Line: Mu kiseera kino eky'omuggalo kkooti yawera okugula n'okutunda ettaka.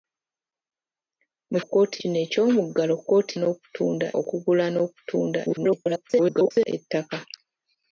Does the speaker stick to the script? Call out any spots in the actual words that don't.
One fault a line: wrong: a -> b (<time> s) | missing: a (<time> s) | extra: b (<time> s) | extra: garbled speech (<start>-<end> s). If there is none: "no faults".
wrong: kiseera -> kkooti (1.6 s)
wrong: yawera -> n'okutunda (3.4 s)
extra: garbled speech (5.4-6.7 s)